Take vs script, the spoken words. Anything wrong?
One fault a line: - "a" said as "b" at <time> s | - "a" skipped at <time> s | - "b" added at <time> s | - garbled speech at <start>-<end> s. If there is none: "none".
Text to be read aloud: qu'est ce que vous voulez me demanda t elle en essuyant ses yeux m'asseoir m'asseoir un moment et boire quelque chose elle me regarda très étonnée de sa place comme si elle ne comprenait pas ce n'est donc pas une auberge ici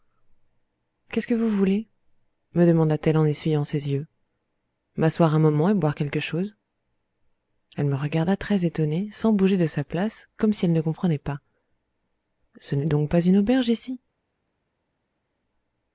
- "m'asseoir" skipped at 5.3 s
- "sans bouger" added at 9.1 s